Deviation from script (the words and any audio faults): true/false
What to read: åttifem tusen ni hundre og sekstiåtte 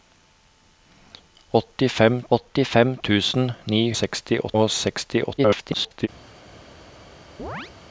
true